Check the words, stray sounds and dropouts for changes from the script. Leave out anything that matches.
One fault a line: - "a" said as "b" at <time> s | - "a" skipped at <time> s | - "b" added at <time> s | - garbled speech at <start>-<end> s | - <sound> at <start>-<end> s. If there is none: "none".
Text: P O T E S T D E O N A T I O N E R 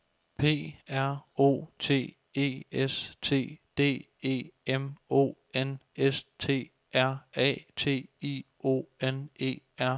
- "R" added at 0.9 s
- "M" added at 4.7 s
- "S T R" added at 6.0 s